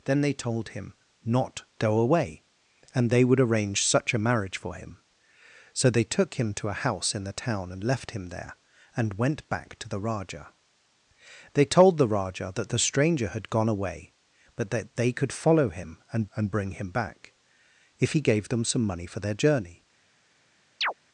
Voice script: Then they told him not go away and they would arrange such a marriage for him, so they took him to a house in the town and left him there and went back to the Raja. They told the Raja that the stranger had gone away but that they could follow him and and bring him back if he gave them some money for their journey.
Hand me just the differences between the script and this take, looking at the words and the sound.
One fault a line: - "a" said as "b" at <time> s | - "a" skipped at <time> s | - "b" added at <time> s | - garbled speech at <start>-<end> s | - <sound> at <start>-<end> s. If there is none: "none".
- chirp at 20.8-20.9 s